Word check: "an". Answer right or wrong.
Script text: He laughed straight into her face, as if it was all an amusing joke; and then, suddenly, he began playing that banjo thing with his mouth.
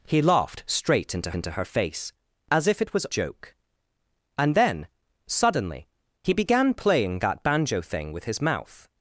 wrong